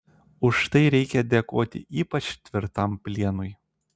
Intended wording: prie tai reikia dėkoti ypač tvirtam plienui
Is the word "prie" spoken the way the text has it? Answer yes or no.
no